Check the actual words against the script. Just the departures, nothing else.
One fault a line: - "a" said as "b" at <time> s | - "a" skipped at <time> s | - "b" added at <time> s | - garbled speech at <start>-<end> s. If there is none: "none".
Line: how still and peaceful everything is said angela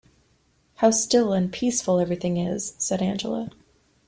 none